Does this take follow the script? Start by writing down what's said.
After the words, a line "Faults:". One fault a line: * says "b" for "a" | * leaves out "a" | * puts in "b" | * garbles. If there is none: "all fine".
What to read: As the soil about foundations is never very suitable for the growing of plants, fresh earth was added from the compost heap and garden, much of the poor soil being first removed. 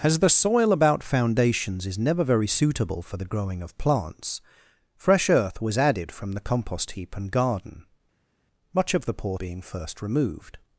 As the soil about foundations is never very suitable for the growing of plants, fresh earth was added from the compost heap and garden, much of the poor being first removed.
Faults:
* leaves out "soil"